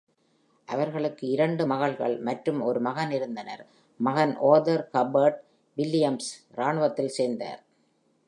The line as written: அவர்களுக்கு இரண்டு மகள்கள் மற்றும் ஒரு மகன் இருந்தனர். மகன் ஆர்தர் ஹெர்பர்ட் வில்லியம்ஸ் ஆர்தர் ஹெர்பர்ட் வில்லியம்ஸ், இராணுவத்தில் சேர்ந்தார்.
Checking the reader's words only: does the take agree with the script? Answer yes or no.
no